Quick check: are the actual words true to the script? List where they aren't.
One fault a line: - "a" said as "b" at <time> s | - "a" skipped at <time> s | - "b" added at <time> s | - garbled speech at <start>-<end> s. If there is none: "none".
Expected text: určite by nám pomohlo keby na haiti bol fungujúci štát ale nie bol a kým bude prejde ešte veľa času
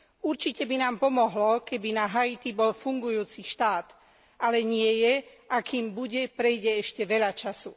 - "bol" said as "je" at 5.0 s